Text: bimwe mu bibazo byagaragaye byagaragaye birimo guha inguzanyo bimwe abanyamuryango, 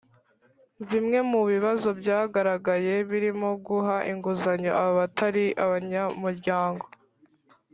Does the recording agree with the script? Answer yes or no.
no